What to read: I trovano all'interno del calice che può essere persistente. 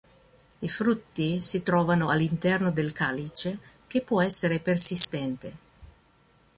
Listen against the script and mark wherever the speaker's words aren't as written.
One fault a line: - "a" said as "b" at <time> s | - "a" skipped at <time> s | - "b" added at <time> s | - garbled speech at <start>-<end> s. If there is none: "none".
- "frutti si" added at 0.7 s